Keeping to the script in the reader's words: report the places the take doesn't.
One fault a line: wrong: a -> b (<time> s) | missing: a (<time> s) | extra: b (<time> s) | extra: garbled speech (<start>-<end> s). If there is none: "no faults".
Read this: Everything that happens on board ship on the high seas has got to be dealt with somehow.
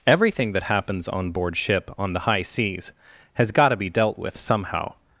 no faults